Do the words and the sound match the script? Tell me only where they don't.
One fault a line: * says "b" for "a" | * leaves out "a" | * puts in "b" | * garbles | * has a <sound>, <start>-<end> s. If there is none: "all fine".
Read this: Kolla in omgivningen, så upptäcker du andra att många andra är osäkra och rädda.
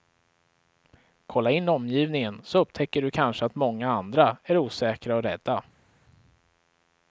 * says "kanske" for "andra"